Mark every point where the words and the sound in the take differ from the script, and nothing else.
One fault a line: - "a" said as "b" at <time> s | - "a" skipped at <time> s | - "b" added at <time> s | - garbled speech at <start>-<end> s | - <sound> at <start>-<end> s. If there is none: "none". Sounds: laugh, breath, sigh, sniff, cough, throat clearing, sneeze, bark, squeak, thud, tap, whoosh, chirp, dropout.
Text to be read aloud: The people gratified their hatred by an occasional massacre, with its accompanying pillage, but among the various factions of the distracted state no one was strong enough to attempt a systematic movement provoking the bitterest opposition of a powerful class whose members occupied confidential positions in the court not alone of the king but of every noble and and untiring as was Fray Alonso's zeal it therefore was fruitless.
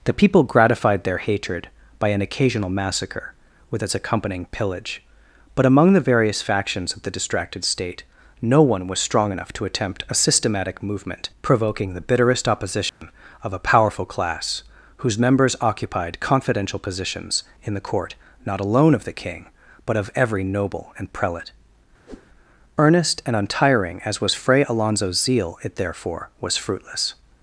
- dropout at 12.9-13.0 s
- "prelate Earnest" added at 21.1 s
- whoosh at 22.1-22.3 s